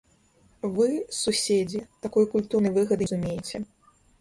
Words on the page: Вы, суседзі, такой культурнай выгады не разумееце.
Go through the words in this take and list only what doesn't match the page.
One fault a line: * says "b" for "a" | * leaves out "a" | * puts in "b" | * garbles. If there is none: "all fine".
* leaves out "не"